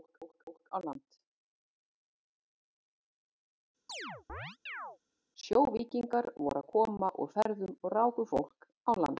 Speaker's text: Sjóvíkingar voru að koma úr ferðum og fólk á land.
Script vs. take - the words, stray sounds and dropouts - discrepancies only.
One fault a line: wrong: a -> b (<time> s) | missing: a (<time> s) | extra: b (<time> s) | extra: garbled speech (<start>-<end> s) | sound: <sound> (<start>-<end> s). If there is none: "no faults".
sound: chirp (3.9-5.0 s)
sound: dropout (7.4-7.5 s)
extra: ráku (8.0 s)